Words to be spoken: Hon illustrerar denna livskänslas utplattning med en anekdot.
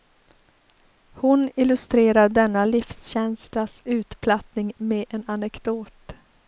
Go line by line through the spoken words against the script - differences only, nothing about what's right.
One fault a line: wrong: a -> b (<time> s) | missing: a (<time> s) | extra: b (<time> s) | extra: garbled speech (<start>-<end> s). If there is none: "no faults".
no faults